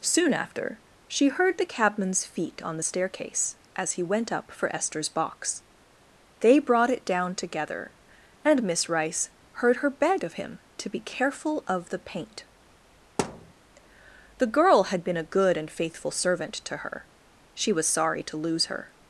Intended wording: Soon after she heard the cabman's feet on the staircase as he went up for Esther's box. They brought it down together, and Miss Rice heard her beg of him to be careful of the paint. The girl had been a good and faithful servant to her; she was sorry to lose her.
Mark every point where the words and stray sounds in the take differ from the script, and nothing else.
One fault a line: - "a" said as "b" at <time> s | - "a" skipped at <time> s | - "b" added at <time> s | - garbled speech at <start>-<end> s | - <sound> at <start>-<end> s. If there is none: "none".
- thud at 13.2-13.5 s